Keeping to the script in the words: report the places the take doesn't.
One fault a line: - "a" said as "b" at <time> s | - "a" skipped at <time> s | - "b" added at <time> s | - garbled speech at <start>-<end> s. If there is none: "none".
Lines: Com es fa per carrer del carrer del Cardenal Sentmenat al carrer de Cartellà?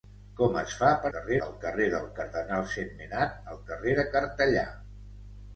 none